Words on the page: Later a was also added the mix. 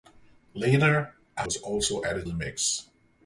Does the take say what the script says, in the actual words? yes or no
yes